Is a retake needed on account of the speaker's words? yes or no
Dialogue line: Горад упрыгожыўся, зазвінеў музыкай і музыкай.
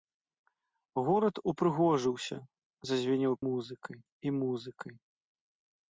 no